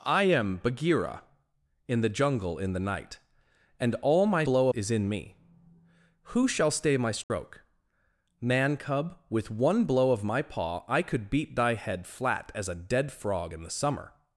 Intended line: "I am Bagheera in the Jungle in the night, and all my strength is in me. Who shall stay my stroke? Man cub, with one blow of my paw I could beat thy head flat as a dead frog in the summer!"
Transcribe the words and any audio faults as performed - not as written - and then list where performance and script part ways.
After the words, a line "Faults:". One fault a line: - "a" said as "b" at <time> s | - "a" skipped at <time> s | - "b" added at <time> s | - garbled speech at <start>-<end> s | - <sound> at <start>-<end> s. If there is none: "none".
"I am Bagheera in the Jungle in the night, and all my blow is in me. Who shall stay my stroke? Man cub, with one blow of my paw I could beat thy head flat as a dead frog in the summer!"
Faults:
- "strength" said as "blow" at 4.4 s
- dropout at 7.2-7.3 s